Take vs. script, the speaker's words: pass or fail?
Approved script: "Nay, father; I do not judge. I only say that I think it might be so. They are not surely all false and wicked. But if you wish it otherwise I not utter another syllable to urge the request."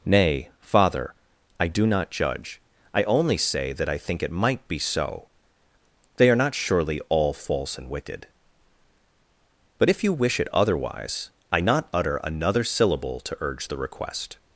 pass